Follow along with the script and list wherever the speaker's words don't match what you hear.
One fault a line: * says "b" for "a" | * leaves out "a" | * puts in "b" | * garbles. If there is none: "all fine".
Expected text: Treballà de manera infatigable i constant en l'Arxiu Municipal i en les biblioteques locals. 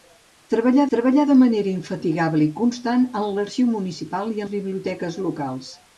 * puts in "treballà"
* leaves out "en"